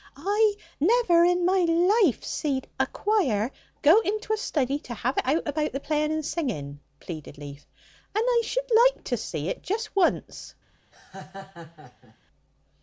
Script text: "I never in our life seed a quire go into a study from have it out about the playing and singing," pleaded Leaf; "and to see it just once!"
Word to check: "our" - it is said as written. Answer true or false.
false